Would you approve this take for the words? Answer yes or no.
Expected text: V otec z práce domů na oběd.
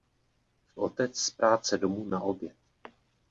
yes